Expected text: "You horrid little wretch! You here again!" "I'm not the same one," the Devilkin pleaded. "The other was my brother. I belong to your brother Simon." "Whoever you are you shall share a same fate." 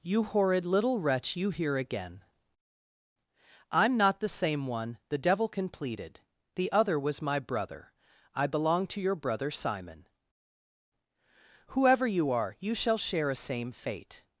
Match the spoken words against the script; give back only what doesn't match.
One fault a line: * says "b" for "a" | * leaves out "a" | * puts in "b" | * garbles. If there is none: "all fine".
all fine